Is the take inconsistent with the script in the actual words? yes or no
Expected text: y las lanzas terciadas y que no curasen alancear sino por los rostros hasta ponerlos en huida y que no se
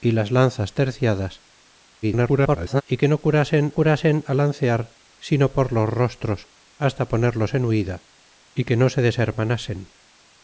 yes